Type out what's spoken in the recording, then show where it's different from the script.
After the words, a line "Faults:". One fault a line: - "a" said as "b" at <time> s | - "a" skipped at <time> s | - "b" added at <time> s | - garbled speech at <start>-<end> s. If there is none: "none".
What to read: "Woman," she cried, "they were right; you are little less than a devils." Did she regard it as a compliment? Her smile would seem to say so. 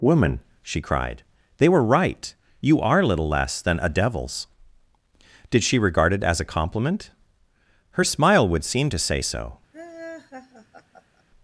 "Woman," she cried, "they were right; you are little less than a devils." Did she regard it as a compliment? Her smile would seem to say so.
Faults:
none